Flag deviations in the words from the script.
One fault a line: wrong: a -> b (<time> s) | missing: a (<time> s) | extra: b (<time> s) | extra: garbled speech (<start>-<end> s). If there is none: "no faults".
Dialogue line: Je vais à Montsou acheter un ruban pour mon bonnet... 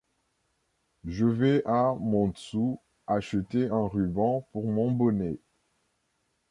no faults